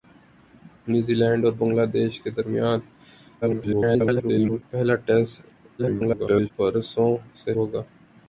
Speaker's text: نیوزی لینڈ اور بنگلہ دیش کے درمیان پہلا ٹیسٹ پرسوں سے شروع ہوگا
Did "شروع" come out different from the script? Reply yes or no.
yes